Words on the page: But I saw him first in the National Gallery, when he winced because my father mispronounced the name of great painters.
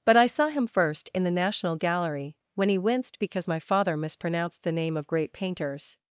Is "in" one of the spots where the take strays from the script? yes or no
no